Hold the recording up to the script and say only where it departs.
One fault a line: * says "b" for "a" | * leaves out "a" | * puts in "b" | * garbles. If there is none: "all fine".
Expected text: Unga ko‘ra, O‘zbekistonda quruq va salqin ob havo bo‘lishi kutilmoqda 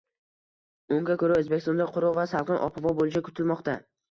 all fine